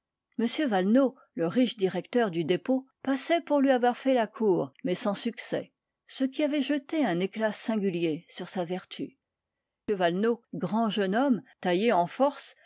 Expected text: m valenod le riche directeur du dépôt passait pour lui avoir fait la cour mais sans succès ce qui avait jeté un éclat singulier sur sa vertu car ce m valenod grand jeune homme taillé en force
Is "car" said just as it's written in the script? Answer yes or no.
no